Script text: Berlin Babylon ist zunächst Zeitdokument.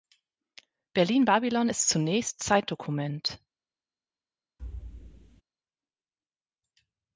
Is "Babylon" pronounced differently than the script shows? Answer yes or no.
no